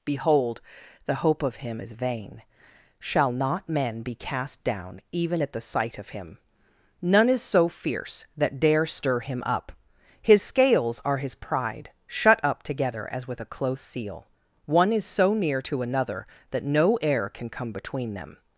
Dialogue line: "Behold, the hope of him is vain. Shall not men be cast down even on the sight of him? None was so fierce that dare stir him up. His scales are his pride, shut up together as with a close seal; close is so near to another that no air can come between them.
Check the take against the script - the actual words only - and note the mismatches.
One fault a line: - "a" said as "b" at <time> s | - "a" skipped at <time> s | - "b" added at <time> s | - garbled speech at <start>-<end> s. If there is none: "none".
- "on" said as "at" at 5.4 s
- "was" said as "is" at 7.3 s
- "close" said as "one" at 14.7 s